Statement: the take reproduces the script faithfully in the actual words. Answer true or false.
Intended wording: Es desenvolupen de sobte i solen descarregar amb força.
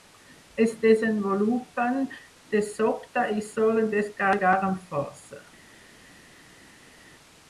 true